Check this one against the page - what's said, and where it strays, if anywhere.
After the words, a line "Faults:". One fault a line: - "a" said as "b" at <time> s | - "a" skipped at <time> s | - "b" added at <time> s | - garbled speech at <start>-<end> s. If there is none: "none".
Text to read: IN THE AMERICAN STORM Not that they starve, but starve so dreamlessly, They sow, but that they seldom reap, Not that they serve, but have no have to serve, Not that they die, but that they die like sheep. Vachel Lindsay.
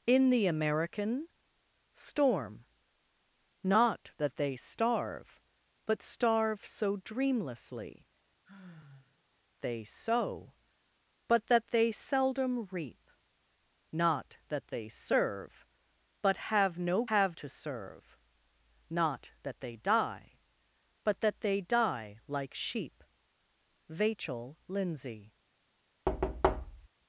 IN THE AMERICAN STORM Not that they starve, but starve so dreamlessly, They sow, but that they seldom reap, Not that they serve, but have no have to serve, Not that they die, but that they die like sheep. Vachel Lindsay.
Faults:
none